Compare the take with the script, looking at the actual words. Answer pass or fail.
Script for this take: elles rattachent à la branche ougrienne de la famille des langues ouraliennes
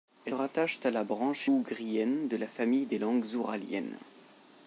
pass